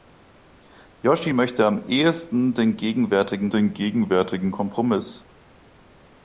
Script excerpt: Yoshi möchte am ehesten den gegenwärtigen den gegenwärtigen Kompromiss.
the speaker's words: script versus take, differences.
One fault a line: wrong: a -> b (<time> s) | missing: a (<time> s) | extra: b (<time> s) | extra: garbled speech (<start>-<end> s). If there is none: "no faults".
no faults